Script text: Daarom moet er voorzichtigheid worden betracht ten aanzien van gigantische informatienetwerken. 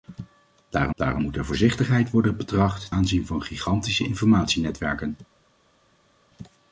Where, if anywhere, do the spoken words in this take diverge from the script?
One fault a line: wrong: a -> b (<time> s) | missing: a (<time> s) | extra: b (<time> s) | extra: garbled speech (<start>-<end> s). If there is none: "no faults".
extra: daarom (0.9 s)
missing: ten (2.9 s)